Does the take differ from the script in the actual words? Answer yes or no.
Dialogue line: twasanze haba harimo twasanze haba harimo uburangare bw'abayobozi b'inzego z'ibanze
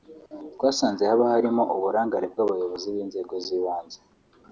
yes